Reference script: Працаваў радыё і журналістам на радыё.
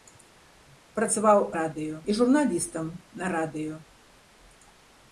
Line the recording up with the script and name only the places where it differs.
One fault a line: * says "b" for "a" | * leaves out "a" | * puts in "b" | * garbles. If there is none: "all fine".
all fine